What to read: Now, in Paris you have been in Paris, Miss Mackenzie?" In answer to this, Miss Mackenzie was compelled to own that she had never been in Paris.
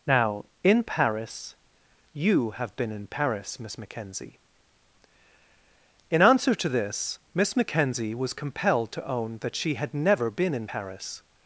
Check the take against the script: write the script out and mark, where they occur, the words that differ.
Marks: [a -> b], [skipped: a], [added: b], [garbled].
Now, in Paris you have been in Paris, Miss Mackenzie?" In answer to this, Miss Mackenzie was compelled to own that she had never been in Paris.